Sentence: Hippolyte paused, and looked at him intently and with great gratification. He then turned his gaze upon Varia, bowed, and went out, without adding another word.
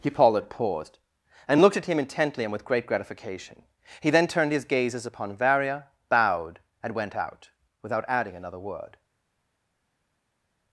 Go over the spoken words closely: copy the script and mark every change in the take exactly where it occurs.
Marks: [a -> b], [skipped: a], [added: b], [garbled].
Hippolyte paused, and looked at him intently and with great gratification. He then turned his [gaze -> gazes] upon Varia, bowed, and went out, without adding another word.